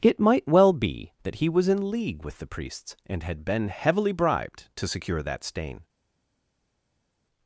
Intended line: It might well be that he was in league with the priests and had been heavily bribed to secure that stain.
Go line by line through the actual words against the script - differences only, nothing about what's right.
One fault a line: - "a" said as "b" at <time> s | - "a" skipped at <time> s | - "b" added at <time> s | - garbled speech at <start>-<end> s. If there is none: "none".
none